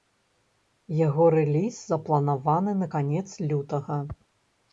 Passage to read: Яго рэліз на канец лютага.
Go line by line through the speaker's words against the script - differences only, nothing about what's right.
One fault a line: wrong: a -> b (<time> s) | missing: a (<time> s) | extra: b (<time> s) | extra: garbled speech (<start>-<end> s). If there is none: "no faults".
extra: запланаваны (1.9 s)